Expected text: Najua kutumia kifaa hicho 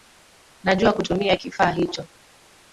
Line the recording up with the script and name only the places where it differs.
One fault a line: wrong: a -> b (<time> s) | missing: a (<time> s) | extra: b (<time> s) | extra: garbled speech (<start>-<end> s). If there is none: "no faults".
no faults